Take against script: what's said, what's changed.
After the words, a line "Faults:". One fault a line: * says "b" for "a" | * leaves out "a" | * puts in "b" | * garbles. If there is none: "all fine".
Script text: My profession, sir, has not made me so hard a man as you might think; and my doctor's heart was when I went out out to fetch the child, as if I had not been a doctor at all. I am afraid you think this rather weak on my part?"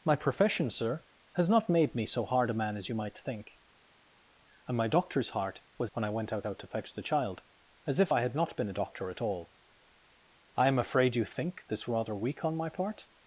My profession, sir, has not made me so hard a man as you might think; and my doctor's heart was when I went out out to fetch the child, as if I had not been a doctor at all. I am afraid you think this rather weak on my part?"
Faults:
all fine